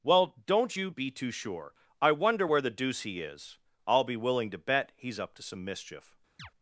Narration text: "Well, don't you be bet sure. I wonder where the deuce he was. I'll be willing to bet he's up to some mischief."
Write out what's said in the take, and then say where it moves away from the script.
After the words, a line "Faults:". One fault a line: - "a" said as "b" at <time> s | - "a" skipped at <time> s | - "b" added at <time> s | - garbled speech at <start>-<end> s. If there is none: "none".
"Well, don't you be too sure. I wonder where the deuce he is. I'll be willing to bet he's up to some mischief."
Faults:
- "bet" said as "too" at 1.1 s
- "was" said as "is" at 3.2 s